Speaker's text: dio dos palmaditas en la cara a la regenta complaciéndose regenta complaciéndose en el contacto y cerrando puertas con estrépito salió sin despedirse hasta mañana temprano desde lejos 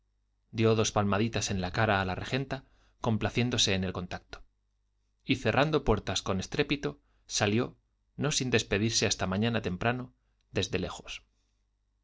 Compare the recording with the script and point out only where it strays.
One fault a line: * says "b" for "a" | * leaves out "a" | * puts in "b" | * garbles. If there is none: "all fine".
* leaves out "regenta complaciéndose"
* puts in "no"